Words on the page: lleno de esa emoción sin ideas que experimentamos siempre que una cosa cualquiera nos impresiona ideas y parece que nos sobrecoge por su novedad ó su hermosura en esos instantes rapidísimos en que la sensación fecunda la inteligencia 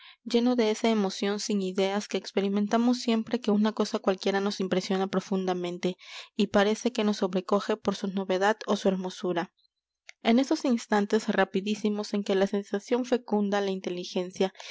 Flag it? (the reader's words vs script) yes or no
yes